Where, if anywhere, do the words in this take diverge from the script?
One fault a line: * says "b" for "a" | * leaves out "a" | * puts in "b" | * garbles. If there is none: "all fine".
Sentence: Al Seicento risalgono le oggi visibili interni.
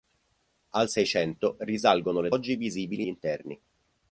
all fine